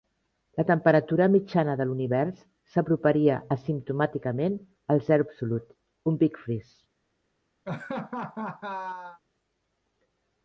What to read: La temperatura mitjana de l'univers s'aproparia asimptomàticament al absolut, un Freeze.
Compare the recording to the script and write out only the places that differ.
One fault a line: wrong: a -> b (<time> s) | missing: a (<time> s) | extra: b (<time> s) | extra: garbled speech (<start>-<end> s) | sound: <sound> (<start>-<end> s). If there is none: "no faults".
extra: zero (5.1 s)
extra: Big (6.2 s)
sound: laugh (7.6-9.2 s)